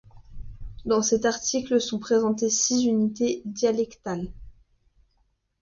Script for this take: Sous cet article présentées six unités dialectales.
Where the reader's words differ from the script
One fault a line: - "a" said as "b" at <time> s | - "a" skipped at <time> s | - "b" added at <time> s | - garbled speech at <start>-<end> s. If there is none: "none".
- "Sous" said as "Dans" at 0.8 s
- "sont" added at 1.8 s